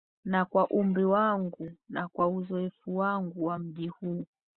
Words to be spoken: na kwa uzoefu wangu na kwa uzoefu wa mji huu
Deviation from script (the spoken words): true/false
true